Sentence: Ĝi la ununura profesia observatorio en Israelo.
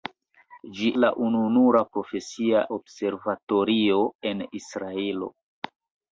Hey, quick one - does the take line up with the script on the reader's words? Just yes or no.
yes